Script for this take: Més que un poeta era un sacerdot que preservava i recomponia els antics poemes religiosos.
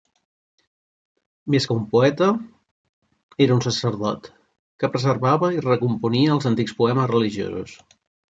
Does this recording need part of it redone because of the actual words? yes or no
no